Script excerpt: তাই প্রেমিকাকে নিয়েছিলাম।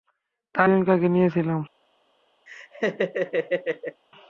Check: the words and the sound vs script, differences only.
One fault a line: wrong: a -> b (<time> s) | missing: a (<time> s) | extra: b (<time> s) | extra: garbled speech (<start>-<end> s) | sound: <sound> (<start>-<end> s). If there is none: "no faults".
sound: laugh (2.5-4.0 s)